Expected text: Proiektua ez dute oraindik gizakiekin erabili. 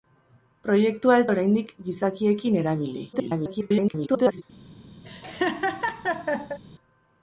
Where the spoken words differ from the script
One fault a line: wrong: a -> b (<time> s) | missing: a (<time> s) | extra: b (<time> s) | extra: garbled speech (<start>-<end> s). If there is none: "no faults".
missing: dute (1.3 s)
extra: garbled speech (3.1-4.4 s)